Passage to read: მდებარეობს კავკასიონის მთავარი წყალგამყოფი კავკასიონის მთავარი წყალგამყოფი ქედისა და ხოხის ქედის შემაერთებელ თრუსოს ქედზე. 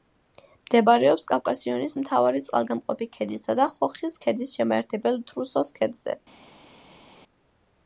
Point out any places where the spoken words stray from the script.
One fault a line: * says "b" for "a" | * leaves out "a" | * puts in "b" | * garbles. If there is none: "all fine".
* leaves out "კავკასიონის მთავარი წყალგამყოფი"